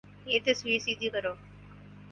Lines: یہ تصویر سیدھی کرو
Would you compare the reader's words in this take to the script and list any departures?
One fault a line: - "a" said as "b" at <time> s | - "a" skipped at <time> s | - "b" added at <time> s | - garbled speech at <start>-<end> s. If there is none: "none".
none